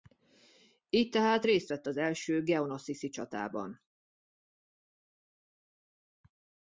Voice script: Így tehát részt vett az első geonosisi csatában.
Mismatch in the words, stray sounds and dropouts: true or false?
false